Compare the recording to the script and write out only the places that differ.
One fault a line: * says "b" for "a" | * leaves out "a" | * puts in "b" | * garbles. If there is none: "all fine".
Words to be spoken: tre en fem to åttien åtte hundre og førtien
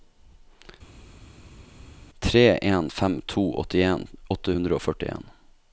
all fine